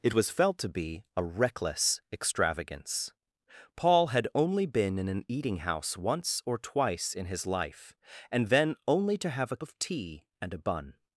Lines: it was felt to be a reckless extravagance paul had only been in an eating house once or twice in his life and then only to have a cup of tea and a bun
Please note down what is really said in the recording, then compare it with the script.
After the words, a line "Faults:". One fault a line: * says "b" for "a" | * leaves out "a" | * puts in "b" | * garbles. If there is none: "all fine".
it was felt to be a reckless extravagance paul had only been in an eating house once or twice in his life and then only to have a of tea and a bun
Faults:
* leaves out "cup"